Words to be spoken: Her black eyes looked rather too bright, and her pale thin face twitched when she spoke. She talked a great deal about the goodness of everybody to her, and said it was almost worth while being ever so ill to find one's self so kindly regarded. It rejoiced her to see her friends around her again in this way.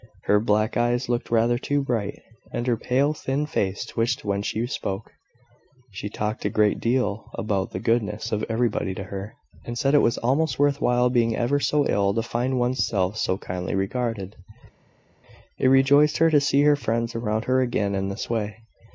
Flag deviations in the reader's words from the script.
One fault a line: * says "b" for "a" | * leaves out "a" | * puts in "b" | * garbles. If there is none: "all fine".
all fine